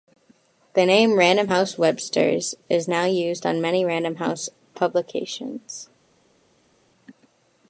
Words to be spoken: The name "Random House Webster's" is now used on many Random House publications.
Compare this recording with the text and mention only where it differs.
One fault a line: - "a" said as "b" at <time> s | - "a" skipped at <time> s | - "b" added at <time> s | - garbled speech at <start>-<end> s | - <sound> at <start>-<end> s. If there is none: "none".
none